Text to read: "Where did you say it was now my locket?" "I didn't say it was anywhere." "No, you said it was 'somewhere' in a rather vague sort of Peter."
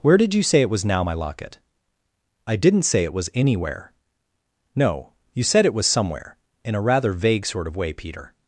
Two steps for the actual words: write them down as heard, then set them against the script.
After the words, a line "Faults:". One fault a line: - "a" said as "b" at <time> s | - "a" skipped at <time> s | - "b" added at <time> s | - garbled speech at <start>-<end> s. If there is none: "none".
"Where did you say it was now my locket?" "I didn't say it was anywhere." "No, you said it was 'somewhere' in a rather vague sort of way, Peter."
Faults:
- "way" added at 7.7 s